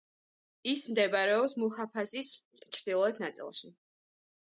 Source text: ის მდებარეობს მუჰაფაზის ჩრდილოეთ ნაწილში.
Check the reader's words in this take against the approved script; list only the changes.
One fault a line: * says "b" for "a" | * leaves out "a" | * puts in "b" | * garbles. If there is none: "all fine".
all fine